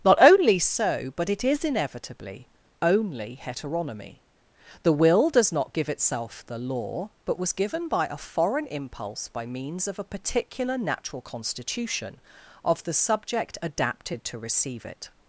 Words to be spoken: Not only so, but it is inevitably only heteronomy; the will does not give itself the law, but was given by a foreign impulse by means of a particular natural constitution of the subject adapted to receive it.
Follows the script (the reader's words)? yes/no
yes